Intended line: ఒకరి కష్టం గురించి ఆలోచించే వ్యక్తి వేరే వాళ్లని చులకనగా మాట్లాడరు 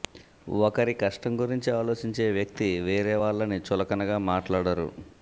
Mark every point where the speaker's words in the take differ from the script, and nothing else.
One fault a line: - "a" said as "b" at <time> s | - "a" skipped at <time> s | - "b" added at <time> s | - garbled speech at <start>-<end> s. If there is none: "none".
none